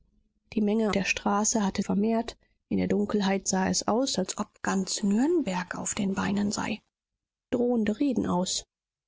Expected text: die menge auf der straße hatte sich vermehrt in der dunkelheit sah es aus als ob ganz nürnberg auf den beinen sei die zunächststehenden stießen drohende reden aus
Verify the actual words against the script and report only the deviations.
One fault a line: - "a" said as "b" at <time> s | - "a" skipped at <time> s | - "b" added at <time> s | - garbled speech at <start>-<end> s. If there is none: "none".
- "auf" skipped at 0.9 s
- "sich" skipped at 1.8 s
- "die zunächststehenden stießen" skipped at 6.8 s